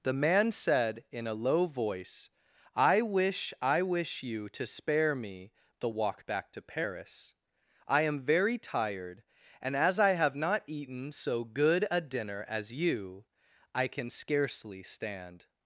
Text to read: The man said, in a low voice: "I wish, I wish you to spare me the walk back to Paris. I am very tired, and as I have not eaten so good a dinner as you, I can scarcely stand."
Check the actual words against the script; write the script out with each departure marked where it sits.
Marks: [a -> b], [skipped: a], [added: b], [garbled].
The man said, in a low voice: "I wish, I wish you to spare me the walk back to Paris. I am very tired, and as I have not eaten so good a dinner as you, I can scarcely stand."